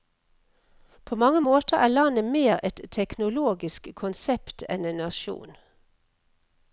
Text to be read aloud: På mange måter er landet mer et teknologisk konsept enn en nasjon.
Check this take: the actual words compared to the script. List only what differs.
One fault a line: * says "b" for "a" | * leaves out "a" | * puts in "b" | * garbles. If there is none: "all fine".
all fine